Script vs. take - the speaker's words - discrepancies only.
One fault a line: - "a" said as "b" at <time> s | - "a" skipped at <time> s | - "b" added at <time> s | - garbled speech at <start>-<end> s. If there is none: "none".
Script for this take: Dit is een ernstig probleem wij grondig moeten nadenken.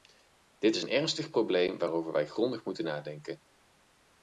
- "waarover" added at 1.8 s